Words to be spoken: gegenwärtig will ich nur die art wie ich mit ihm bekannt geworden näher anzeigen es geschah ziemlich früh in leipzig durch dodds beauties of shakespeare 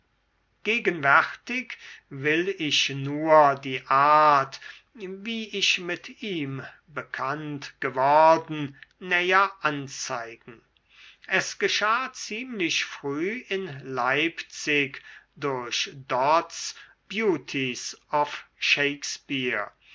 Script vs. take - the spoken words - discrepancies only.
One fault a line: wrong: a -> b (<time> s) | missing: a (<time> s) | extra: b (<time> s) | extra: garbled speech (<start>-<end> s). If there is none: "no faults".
no faults